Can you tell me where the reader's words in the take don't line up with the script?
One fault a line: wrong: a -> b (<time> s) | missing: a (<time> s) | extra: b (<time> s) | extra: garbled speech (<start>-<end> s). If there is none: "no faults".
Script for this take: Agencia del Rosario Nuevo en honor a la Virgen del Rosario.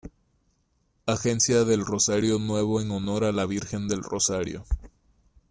no faults